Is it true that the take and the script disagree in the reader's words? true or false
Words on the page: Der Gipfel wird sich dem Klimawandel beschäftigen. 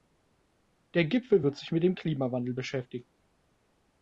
true